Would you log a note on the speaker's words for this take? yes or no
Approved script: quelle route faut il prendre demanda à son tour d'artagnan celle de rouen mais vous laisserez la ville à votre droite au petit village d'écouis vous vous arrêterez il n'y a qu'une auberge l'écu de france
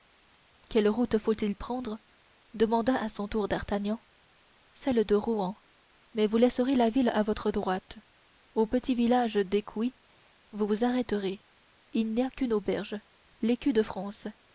no